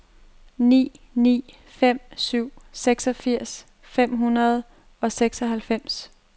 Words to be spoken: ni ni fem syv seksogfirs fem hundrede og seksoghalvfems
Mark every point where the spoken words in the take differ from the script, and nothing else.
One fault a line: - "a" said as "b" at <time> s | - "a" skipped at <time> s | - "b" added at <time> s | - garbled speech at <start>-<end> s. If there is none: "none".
none